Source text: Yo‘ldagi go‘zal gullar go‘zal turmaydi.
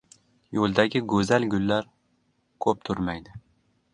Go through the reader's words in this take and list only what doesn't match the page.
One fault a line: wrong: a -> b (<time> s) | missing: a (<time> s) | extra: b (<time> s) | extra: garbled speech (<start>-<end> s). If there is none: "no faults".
wrong: go‘zal -> ko‘p (2.7 s)